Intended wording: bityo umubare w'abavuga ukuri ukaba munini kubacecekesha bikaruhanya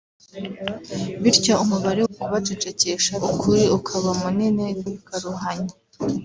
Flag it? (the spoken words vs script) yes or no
yes